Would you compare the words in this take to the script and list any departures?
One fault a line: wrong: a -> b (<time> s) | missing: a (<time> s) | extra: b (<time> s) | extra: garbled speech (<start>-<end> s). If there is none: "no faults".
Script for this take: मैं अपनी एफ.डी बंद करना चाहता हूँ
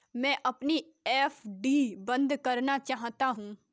no faults